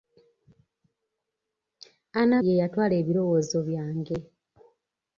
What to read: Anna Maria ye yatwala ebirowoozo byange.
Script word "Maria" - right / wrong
wrong